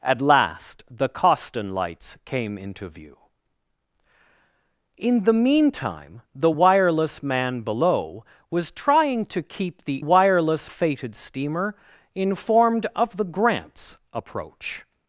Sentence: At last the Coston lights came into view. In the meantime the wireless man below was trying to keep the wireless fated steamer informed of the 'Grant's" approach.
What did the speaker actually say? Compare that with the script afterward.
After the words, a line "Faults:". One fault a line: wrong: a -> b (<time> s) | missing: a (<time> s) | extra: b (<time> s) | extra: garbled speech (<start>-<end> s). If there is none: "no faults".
At last the Coston lights came into view. In the meantime the wireless man below was trying to keep the wireless fated steamer informed of the 'Grant's" approach.
Faults:
no faults